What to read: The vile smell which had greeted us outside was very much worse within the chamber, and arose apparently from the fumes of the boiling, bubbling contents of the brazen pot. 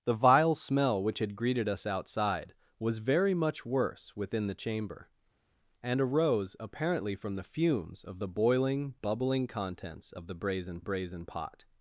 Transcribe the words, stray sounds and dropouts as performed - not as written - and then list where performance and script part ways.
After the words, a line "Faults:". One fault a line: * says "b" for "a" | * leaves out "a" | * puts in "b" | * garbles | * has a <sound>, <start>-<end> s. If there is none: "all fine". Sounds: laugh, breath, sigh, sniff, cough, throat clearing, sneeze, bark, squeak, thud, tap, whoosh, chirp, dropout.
The vile smell which had greeted us outside was very much worse within the chamber, and arose apparently from the fumes of the boiling, bubbling contents of the brazen brazen pot.
Faults:
* puts in "brazen"